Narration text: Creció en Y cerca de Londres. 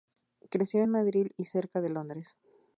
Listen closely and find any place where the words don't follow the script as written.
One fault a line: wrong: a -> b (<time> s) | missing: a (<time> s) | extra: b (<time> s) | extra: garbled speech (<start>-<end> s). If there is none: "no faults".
extra: Madrid (0.9 s)